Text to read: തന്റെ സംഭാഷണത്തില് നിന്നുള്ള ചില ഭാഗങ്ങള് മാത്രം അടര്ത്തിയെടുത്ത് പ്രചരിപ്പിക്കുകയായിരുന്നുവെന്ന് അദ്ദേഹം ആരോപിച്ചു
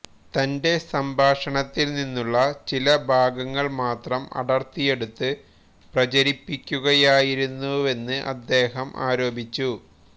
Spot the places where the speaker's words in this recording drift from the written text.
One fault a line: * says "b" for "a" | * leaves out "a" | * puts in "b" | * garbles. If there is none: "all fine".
all fine